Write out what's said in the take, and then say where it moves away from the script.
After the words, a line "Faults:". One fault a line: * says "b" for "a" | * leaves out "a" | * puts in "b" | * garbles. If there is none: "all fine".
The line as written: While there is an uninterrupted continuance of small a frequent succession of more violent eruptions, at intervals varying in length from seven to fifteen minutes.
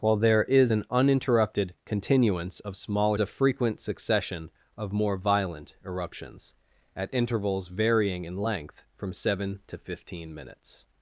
While there is an uninterrupted continuance of small a frequent succession of more violent eruptions, at intervals varying in length from seven to fifteen minutes.
Faults:
all fine